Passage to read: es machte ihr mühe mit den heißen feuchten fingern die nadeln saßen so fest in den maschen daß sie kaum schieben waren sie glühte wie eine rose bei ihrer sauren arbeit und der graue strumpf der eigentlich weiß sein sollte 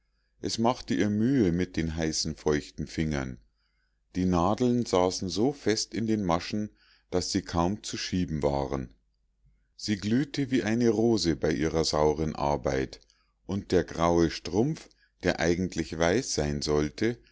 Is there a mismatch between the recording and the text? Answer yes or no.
yes